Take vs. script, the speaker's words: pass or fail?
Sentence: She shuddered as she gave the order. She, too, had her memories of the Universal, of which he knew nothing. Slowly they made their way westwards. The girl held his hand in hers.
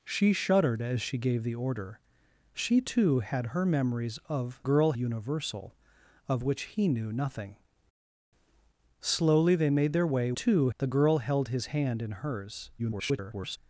fail